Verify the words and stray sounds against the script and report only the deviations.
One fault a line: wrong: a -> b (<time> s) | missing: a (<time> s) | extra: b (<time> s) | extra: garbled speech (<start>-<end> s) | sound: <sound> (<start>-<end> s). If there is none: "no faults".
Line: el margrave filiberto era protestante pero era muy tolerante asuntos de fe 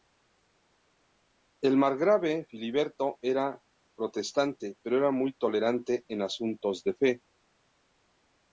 extra: en (6.1 s)